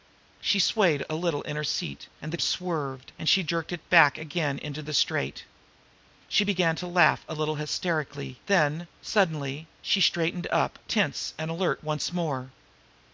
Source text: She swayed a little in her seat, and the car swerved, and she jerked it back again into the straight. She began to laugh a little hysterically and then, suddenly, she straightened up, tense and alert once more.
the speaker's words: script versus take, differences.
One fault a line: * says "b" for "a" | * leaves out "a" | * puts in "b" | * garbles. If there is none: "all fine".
* leaves out "car"
* leaves out "and"